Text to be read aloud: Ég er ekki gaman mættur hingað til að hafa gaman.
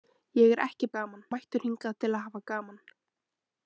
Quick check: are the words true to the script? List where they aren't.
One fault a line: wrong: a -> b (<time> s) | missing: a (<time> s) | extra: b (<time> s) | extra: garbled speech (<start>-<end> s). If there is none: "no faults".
no faults